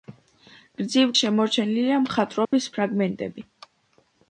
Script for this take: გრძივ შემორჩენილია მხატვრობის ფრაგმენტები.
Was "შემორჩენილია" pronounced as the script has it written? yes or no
yes